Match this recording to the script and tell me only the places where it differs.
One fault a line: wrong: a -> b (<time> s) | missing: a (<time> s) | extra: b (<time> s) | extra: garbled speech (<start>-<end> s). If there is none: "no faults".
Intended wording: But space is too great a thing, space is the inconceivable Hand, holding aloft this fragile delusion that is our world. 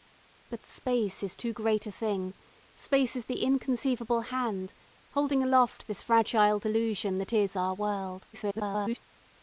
extra: garbled speech (8.3-9.0 s)